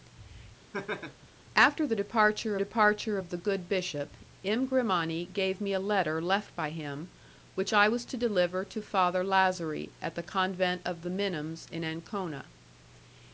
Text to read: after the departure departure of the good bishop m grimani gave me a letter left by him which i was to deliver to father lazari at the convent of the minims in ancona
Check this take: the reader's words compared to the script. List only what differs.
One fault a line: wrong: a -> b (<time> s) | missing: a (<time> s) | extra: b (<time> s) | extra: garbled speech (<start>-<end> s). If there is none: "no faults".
no faults